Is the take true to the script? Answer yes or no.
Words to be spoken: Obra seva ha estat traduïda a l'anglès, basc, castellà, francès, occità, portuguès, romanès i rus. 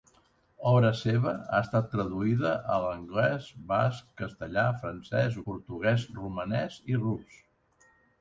no